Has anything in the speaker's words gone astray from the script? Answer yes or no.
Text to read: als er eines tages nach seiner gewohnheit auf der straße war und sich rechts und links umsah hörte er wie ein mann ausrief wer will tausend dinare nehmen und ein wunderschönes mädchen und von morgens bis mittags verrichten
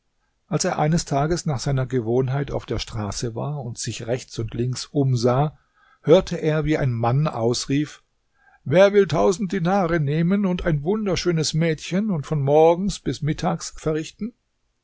no